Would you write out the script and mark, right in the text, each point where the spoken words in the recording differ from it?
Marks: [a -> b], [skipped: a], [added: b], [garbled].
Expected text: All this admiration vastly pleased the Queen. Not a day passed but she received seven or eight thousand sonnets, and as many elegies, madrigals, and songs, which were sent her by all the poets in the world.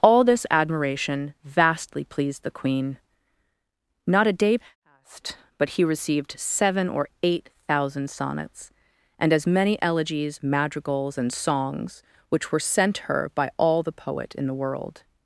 All this admiration vastly pleased the Queen. Not a day passed but [she -> he] received seven or eight thousand sonnets, and as many elegies, madrigals, and songs, which were sent her by all the [poets -> poet] in the world.